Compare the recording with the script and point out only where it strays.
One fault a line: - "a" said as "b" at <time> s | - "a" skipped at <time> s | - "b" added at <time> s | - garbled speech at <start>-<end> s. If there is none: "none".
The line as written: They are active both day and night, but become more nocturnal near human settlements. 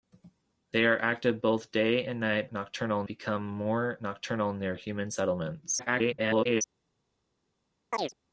- "but" said as "nocturnal" at 2.5 s
- garbled speech at 5.8-6.6 s